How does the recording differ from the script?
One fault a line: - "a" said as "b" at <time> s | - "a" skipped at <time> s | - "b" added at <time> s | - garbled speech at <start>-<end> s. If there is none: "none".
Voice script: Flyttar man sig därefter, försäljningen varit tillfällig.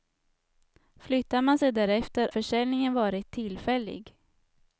none